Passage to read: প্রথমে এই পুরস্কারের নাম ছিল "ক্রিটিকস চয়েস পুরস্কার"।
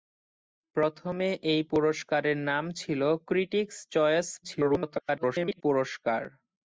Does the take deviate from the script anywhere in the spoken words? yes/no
yes